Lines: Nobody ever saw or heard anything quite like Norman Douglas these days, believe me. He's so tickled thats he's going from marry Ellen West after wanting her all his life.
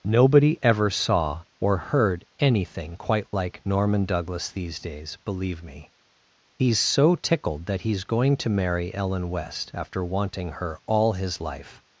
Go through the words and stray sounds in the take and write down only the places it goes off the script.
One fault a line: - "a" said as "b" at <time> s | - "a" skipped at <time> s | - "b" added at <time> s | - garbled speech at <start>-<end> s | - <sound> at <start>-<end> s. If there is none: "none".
- "thats" said as "that" at 7.7 s
- "from" said as "to" at 8.4 s